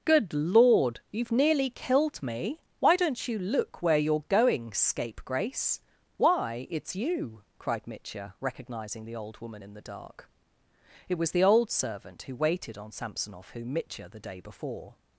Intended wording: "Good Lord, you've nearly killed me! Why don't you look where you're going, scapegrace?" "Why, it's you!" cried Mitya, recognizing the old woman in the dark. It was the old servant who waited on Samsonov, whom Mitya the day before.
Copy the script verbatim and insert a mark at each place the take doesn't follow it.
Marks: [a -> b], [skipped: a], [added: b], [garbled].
"Good Lord, you've nearly killed me! Why don't you look where you're going, scapegrace?" "Why, it's you!" cried Mitya, recognizing the old woman in the dark. It was the old servant who waited on Samsonov, whom Mitya the day before.